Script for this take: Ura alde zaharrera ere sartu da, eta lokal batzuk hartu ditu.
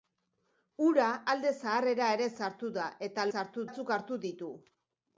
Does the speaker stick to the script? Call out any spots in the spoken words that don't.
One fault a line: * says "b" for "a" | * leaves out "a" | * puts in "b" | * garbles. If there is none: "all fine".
* says "sartu" for "lokal"